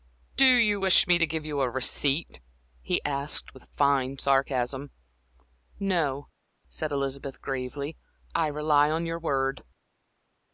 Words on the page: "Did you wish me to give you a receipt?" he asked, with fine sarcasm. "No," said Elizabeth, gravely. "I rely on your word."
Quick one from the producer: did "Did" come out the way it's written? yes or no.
no